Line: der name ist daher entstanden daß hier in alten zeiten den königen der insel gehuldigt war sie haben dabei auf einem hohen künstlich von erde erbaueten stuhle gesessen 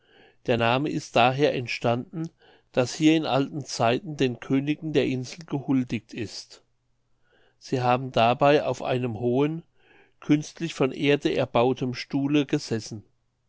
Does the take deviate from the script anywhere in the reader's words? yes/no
yes